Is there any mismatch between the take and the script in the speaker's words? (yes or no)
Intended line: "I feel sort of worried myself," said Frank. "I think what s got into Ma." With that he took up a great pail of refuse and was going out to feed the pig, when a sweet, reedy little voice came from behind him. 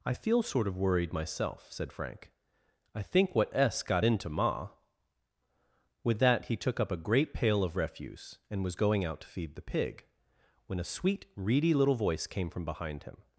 no